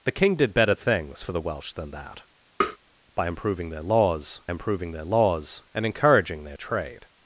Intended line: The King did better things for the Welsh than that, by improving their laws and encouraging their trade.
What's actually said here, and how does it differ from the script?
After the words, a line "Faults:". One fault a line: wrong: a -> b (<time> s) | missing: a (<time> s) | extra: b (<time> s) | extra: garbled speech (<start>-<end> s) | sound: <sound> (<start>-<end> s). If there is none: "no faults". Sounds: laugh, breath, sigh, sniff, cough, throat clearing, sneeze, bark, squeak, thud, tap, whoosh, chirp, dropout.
The King did better things for the Welsh than that, by improving their laws improving their laws and encouraging their trade.
Faults:
sound: tap (2.6-2.8 s)
extra: improving their laws (4.5 s)